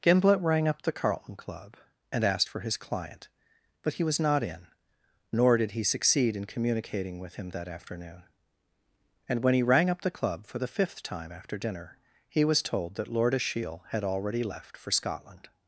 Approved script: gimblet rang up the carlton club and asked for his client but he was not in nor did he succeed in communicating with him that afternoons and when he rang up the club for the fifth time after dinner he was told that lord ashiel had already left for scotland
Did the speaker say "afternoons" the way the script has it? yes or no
no